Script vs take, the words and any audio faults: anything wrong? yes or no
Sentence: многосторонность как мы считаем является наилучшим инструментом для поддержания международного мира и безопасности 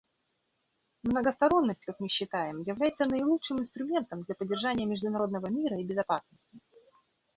no